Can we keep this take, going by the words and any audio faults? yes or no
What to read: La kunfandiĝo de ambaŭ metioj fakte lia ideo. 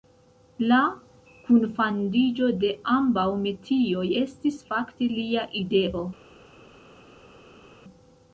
no